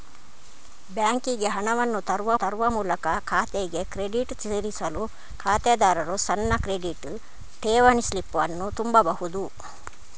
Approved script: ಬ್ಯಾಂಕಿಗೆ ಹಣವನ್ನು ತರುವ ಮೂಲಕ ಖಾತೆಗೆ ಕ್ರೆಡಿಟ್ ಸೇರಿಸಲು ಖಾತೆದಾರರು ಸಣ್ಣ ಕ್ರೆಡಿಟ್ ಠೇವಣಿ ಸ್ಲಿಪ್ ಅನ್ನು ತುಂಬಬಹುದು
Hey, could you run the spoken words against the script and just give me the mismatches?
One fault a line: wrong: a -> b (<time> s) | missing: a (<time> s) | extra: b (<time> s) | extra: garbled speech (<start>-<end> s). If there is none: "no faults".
extra: ತರುವ (2.3 s)